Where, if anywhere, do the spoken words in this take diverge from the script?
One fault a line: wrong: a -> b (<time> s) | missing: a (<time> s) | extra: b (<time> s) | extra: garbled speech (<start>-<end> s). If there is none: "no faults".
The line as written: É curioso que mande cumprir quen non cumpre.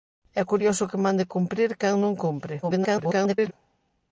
extra: garbled speech (2.6-3.5 s)